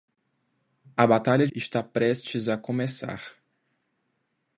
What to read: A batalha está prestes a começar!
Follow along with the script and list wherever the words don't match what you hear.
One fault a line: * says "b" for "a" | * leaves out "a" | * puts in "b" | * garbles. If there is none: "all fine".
all fine